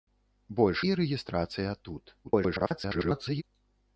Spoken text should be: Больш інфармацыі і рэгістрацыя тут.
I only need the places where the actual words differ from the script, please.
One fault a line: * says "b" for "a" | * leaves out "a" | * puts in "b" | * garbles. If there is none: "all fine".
* leaves out "інфармацыі"
* garbles